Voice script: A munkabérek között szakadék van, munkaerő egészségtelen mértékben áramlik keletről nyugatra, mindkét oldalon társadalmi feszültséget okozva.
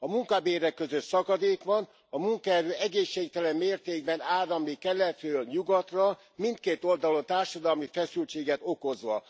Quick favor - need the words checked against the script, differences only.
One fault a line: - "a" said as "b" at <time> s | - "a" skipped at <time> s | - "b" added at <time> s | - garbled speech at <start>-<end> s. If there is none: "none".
- "a" added at 2.1 s